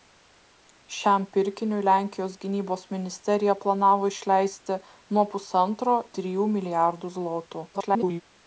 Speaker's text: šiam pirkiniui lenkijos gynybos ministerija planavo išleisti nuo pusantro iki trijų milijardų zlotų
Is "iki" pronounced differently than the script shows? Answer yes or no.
yes